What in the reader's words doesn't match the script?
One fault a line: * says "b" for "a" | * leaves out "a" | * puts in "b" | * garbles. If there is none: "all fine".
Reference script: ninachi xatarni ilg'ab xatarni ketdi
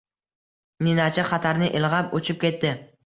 * says "uchib" for "xatarni"